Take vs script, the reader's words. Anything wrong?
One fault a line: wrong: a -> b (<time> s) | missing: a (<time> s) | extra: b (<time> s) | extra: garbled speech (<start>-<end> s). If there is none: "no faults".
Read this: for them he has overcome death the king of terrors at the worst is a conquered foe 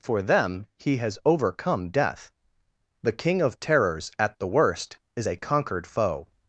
no faults